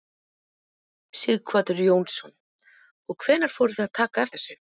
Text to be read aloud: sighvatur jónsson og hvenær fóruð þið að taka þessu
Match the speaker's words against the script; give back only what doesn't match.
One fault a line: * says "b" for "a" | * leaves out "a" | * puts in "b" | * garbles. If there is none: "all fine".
all fine